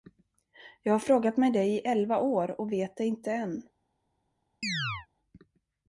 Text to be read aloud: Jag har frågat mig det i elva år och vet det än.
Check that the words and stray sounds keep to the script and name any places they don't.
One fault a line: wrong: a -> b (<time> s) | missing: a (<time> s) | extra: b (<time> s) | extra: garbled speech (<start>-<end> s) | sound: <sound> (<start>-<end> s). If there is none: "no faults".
extra: inte (3.0 s)
sound: chirp (4.6-5.1 s)